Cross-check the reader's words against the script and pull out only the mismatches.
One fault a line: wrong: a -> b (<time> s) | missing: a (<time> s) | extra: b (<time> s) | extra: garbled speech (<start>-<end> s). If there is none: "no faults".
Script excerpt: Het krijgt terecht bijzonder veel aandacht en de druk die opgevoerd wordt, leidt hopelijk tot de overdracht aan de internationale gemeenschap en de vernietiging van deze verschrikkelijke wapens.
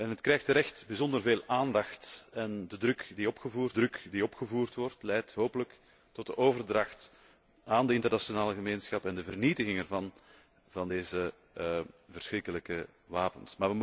extra: druk die opgevoerd (3.7 s)